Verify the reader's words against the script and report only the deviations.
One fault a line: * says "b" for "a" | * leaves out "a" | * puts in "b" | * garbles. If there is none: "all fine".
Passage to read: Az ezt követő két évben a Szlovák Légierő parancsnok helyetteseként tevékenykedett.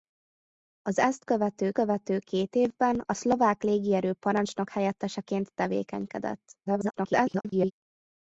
* puts in "követő"
* garbles